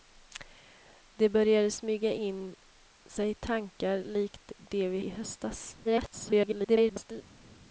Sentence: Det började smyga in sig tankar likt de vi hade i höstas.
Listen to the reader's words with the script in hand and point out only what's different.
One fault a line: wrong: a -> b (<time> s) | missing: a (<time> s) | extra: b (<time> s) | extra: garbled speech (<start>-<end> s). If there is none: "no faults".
missing: hade (5.0 s)
extra: garbled speech (5.8-7.2 s)